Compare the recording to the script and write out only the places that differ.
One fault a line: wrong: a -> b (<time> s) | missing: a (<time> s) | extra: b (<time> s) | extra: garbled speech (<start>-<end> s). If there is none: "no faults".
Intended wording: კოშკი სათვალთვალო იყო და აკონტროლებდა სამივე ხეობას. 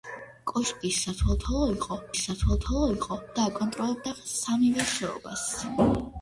extra: სათვალთვალო იყო (2.2 s)